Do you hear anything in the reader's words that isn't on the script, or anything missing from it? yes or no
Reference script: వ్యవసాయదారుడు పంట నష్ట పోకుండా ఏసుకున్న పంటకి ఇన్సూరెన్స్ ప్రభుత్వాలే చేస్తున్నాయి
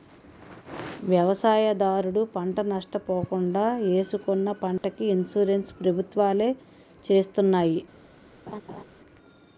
no